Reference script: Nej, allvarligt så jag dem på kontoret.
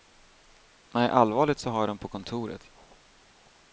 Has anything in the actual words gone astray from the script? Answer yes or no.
yes